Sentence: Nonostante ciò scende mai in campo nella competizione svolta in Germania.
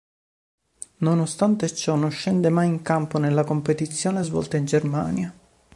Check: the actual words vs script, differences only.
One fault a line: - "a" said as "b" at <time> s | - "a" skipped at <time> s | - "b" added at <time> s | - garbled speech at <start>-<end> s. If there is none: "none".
- "non" added at 1.9 s